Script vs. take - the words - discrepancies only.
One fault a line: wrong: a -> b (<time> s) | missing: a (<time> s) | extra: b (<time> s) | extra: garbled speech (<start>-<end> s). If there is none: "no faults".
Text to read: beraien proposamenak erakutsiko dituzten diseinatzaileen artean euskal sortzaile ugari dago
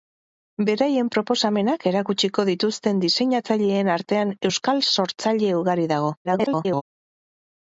extra: garbled speech (6.2-6.8 s)